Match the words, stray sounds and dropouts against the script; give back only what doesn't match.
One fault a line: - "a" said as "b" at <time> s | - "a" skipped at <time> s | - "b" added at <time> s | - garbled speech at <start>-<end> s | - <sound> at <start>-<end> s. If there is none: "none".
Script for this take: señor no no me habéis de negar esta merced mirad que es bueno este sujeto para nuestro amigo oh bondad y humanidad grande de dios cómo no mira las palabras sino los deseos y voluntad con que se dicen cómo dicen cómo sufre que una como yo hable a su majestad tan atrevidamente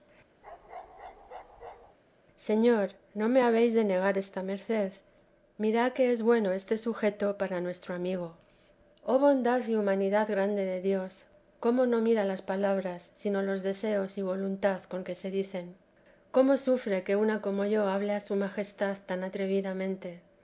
- bark at 0.4-2.0 s
- "no" skipped at 3.3 s
- "dicen cómo" skipped at 16.6 s